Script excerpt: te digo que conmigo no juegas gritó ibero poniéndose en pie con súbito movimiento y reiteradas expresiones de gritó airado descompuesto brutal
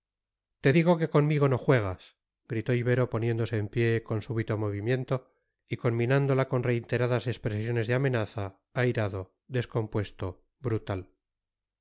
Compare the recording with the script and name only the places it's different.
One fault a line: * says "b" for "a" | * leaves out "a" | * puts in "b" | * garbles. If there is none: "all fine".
* puts in "conminándola con"
* says "amenaza" for "gritó"